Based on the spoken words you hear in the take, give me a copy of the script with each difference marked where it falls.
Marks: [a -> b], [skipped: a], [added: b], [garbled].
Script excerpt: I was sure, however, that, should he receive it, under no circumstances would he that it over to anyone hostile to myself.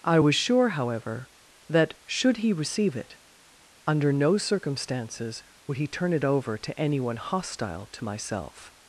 I was sure, however, that, should he receive it, under no circumstances would he [that -> turn] it over to anyone hostile to myself.